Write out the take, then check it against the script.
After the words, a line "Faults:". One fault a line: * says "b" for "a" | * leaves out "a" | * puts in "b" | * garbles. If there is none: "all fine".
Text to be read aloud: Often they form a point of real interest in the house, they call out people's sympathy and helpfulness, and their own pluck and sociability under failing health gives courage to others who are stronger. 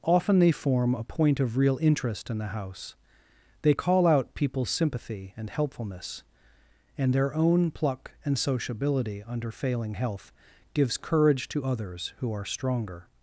Often they form a point of real interest in the house, they call out people's sympathy and helpfulness, and their own pluck and sociability under failing health gives courage to others who are stronger.
Faults:
all fine